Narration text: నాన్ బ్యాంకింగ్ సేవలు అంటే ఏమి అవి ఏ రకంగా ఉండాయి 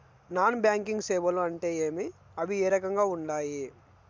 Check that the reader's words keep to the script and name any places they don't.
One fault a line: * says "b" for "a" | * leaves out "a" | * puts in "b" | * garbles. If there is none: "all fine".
all fine